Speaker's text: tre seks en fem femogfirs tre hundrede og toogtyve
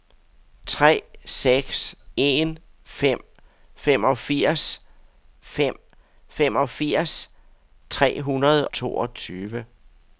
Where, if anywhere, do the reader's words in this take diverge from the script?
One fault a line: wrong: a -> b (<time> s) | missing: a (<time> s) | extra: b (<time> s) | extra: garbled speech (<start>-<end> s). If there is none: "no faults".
extra: fem femogfirs (5.4 s)
missing: og (8.7 s)